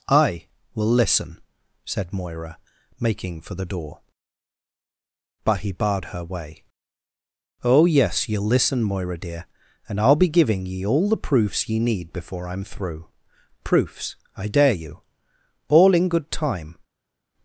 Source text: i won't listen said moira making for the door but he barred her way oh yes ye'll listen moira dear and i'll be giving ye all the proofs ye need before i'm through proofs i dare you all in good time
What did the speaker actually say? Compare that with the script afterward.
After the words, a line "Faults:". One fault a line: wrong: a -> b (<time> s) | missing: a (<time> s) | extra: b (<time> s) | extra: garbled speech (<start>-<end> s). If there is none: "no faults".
i will listen said moira making for the door but he barred her way oh yes ye'll listen moira dear and i'll be giving ye all the proofs ye need before i'm through proofs i dare you all in good time
Faults:
wrong: won't -> will (0.7 s)